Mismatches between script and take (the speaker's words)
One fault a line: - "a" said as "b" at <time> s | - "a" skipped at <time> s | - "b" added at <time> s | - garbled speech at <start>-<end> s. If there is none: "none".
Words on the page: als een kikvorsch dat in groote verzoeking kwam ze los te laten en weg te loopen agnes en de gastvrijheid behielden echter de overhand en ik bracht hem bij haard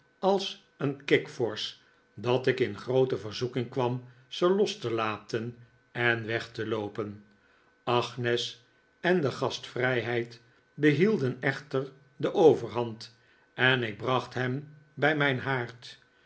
- "ik" added at 2.5 s
- "mijn" added at 15.2 s